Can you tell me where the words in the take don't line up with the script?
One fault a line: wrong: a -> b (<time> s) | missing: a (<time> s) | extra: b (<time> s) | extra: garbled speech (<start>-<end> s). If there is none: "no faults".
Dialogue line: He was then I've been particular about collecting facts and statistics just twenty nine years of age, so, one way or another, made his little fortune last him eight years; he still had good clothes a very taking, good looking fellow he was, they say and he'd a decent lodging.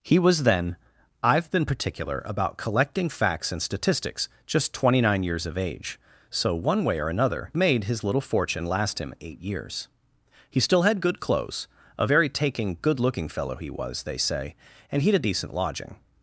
no faults